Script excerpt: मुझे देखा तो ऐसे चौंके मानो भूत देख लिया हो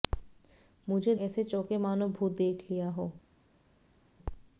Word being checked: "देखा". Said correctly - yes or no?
no